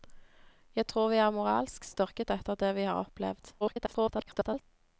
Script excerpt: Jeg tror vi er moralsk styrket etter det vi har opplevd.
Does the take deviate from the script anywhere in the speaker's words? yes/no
yes